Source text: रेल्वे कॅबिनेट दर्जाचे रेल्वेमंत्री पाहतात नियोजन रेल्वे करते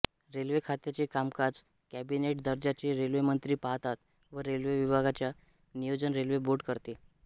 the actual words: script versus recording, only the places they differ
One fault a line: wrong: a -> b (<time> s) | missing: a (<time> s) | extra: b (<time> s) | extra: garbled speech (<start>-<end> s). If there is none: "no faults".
extra: खात्याचे कामकाज (0.7 s)
extra: व रेल्वे विभागाचे (4.3 s)
extra: बोर्ड (6.4 s)